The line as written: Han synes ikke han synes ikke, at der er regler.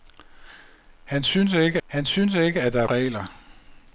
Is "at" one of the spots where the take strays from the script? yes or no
no